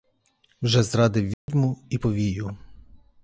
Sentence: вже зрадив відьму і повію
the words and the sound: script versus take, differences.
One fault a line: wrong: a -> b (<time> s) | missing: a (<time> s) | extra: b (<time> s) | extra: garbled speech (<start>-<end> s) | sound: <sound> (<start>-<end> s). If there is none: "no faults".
sound: dropout (1.3-1.5 s)